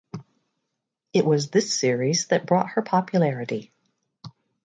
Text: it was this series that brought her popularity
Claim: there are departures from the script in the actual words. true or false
false